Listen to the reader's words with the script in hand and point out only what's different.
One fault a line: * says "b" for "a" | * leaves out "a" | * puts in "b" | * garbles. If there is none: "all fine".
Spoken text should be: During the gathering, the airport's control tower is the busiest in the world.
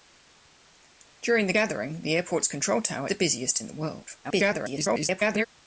* leaves out "is"
* garbles